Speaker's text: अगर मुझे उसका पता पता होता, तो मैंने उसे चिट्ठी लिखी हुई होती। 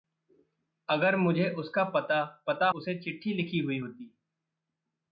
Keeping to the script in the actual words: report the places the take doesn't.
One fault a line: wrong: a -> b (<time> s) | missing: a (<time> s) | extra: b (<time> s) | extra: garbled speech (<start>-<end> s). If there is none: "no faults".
missing: होता तो मैंने (2.7 s)